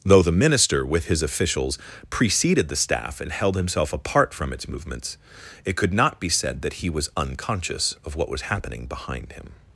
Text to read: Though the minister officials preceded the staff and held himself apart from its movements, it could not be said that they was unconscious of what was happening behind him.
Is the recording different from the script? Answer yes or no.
yes